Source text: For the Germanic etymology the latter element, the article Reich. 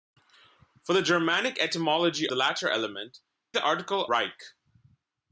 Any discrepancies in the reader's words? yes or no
no